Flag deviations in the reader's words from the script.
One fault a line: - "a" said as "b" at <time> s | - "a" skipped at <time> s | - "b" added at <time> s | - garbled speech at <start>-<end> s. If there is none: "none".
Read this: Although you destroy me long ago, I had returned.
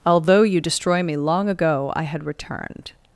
none